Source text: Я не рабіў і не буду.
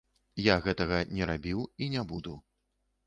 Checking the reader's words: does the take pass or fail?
fail